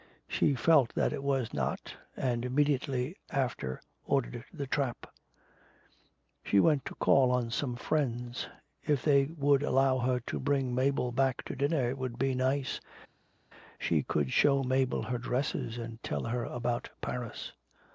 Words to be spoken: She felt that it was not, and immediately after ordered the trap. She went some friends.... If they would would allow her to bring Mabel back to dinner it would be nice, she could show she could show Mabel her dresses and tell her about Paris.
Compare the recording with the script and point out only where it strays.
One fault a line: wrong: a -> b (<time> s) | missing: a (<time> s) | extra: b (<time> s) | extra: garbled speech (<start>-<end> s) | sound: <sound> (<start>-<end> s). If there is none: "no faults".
extra: to call on (6.8 s)
missing: would (9.6 s)
missing: she could show (14.6 s)